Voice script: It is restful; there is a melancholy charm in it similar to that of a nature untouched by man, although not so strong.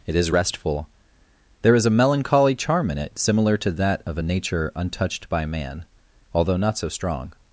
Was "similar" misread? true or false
false